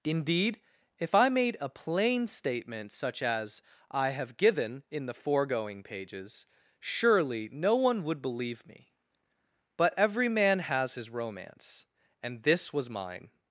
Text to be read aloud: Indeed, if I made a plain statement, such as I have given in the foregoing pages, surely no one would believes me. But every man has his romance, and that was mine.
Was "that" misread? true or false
true